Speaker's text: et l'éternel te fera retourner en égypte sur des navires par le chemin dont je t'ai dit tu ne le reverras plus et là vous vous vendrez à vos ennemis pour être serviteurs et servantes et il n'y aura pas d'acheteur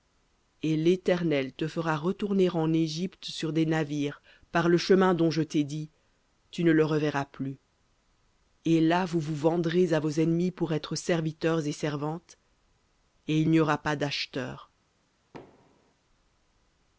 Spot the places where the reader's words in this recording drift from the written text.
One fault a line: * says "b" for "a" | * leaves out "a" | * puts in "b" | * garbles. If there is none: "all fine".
all fine